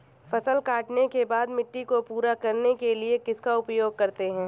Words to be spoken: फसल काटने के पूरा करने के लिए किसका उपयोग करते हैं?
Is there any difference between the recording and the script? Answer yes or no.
yes